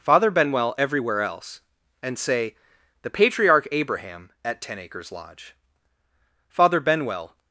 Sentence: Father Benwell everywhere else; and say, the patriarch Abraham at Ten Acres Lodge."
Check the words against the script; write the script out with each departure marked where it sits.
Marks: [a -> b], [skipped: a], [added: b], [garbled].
Father Benwell everywhere else; and say, the patriarch Abraham at Ten Acres Lodge." [added: Father Benwell]